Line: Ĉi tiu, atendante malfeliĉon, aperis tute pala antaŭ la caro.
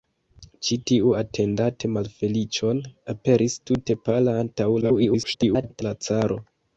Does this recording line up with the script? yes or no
no